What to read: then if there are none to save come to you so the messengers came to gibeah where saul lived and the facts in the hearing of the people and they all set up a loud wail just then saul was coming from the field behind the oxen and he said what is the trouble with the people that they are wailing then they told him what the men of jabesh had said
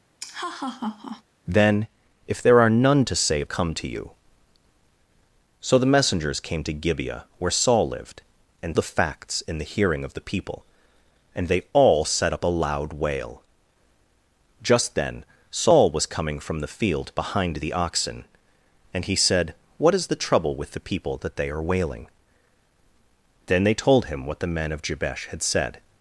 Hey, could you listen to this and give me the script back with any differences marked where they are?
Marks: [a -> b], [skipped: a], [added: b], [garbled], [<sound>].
[laugh] then if there are none to save come to you so the messengers came to gibeah where saul lived and the facts in the hearing of the people and they all set up a loud wail just then saul was coming from the field behind the oxen and he said what is the trouble with the people that they are wailing then they told him what the men of jabesh had said